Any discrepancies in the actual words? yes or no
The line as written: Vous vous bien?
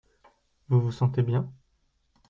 yes